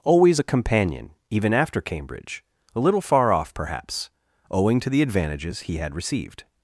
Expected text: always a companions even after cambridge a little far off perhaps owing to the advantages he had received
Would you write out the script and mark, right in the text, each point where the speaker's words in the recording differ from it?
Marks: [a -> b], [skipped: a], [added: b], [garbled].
always a [companions -> companion] even after cambridge a little far off perhaps owing to the advantages he had received